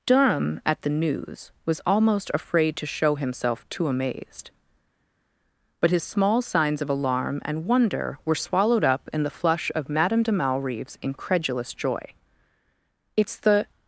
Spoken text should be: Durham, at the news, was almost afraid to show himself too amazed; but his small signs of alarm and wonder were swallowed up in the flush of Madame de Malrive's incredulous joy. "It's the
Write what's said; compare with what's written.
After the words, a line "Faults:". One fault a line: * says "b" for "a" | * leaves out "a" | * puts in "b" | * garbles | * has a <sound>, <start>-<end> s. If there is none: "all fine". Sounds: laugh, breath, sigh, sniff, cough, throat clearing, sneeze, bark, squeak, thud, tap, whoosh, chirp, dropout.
Durham, at the news, was almost afraid to show himself too amazed; but his small signs of alarm and wonder were swallowed up in the flush of Madame de Malrive's incredulous joy. "It's the
Faults:
all fine